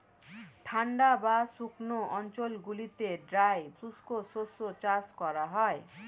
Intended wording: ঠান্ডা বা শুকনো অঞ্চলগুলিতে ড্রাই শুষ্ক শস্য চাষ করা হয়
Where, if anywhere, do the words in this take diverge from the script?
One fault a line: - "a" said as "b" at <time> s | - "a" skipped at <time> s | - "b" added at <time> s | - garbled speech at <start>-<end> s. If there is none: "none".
none